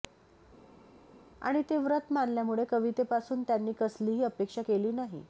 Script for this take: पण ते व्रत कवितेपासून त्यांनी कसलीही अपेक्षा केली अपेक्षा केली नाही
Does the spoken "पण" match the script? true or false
false